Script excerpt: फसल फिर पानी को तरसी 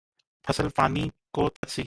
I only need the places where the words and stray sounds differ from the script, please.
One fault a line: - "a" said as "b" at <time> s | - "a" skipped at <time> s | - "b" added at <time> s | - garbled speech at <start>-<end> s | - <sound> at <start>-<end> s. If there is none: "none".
- "फिर" skipped at 0.7 s
- dropout at 1.6-1.6 s